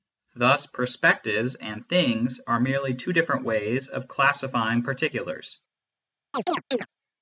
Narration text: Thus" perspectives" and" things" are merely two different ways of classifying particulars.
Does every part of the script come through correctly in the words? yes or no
yes